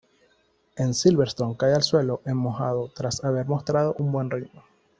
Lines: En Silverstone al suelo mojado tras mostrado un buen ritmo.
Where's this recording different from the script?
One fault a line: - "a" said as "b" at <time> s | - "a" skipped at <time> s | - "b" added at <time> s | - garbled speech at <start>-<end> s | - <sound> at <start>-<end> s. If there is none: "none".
- "cae" added at 1.6 s
- "en" added at 2.2 s
- "haber" added at 3.2 s